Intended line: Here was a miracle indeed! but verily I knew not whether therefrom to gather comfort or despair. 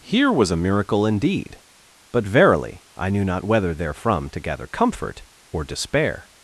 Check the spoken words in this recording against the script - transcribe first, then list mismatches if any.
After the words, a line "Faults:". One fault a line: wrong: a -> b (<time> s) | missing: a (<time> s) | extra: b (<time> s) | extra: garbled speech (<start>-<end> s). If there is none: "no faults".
Here was a miracle indeed! but verily I knew not whether therefrom to gather comfort or despair.
Faults:
no faults